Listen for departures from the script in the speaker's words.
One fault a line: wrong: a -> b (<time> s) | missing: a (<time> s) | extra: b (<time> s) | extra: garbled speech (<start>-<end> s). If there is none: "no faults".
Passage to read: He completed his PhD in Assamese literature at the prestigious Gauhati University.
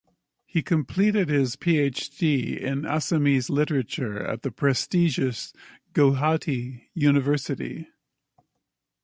no faults